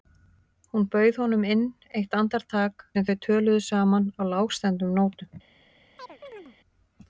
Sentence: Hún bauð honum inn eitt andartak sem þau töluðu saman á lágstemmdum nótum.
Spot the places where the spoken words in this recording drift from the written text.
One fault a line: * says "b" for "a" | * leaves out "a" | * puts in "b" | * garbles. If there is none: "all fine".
all fine